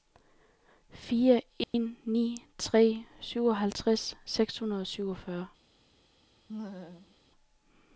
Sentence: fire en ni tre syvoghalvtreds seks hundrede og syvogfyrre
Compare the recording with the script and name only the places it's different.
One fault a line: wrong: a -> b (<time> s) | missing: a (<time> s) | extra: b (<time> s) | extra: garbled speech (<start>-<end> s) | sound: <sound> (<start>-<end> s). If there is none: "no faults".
sound: dropout (1.6-1.7 s)
sound: laugh (6.5-7.2 s)